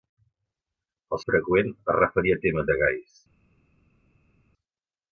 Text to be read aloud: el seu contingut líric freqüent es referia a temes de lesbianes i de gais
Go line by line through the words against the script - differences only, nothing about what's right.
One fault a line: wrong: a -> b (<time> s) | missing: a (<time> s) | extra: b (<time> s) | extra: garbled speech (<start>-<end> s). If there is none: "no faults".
missing: seu contingut líric (1.2 s)
missing: de lesbianes (2.7 s)